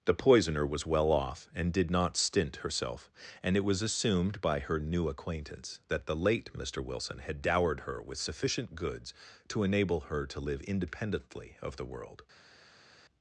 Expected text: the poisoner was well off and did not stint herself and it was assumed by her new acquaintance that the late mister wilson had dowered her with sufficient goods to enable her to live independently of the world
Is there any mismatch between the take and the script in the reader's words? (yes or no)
no